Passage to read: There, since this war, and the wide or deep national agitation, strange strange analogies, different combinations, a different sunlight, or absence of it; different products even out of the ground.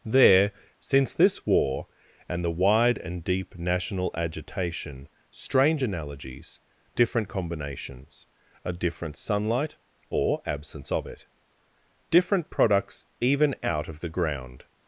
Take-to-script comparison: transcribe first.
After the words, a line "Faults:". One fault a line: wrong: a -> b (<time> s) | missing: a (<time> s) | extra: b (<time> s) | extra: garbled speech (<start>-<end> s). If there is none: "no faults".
There, since this war, and the wide and deep national agitation, strange analogies, different combinations, a different sunlight, or absence of it; different products even out of the ground.
Faults:
wrong: or -> and (3.0 s)
missing: strange (5.8 s)